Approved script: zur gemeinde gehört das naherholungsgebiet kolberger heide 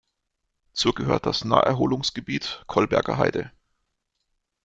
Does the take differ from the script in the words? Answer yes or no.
yes